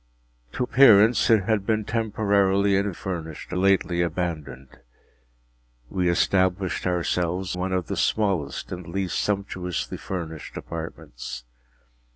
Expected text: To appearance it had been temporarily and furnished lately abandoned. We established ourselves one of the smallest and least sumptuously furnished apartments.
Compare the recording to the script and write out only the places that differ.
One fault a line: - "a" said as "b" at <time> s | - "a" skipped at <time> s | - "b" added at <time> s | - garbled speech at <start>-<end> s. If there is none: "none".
none